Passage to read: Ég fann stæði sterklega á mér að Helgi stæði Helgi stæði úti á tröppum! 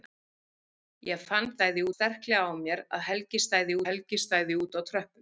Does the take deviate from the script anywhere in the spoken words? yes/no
no